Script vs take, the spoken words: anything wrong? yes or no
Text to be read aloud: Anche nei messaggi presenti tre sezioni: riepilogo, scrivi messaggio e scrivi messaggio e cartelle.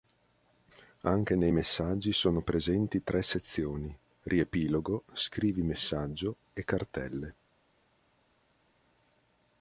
yes